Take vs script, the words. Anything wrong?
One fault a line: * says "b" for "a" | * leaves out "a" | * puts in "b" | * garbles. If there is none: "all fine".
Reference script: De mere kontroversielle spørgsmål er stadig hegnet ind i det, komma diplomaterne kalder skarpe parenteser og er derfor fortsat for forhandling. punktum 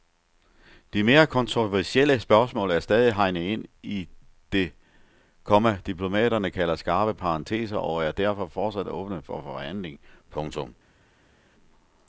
* puts in "åbne"